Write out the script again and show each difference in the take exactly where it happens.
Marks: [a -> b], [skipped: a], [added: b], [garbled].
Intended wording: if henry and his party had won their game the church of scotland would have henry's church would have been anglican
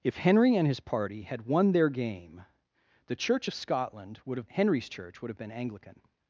if henry and his party had won their game the church of scotland would have henry's church would have been anglican